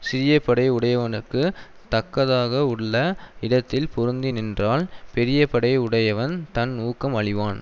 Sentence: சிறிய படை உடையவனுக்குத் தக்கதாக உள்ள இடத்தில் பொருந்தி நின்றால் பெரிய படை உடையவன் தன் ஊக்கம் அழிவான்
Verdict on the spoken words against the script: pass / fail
pass